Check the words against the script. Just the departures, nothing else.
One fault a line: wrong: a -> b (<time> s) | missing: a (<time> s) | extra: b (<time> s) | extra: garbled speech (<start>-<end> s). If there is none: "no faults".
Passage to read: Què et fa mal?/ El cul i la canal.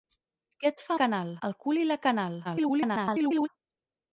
wrong: mal -> canal (1.0 s)
extra: garbled speech (2.4-3.5 s)